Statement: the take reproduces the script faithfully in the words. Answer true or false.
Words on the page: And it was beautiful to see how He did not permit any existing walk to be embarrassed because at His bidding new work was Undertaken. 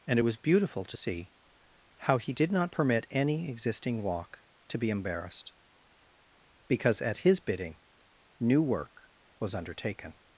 true